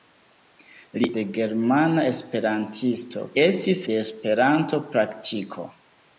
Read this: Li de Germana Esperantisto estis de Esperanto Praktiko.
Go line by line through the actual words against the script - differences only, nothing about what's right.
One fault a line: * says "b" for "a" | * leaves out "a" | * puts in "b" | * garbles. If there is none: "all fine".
all fine